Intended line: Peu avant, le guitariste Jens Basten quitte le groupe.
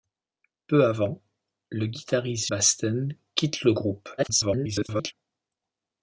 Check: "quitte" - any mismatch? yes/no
no